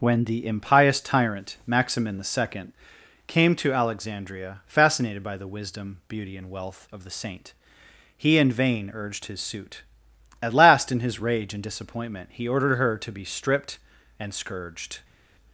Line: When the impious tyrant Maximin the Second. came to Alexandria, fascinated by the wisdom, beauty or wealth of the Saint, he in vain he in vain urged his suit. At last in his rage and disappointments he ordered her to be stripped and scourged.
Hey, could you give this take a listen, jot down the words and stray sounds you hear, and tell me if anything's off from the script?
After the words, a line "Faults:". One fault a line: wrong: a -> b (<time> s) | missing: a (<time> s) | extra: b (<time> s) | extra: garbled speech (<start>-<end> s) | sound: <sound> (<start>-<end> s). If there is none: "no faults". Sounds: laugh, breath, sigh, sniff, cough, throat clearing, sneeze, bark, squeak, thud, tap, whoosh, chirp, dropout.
When the impious tyrant Maximin the Second. came to Alexandria, fascinated by the wisdom, beauty and wealth of the Saint, he in vain urged his suit. At last in his rage and disappointment he ordered her to be stripped and scourged.
Faults:
wrong: or -> and (6.4 s)
missing: he in vain (8.9 s)
wrong: disappointments -> disappointment (11.6 s)